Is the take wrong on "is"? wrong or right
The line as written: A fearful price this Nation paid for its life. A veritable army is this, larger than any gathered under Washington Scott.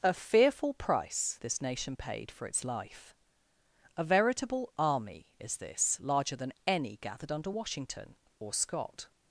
right